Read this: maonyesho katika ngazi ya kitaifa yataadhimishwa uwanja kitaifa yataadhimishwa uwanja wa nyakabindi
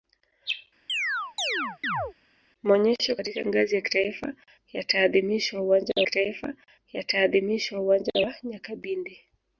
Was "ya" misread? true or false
false